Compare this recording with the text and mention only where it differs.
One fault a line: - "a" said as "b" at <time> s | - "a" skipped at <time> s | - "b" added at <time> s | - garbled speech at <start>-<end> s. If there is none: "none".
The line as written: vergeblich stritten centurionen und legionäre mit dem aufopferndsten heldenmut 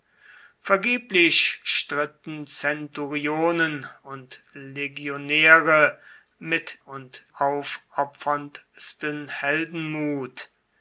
- "dem" said as "und" at 6.8 s